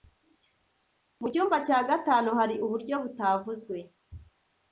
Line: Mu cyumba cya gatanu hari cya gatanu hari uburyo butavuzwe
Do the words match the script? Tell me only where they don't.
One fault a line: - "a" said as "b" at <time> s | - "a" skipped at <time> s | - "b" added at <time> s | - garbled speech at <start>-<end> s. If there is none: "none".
- "cya gatanu hari" skipped at 2.5 s